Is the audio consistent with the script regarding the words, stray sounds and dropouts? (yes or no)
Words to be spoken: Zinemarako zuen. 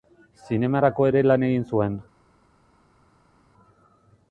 no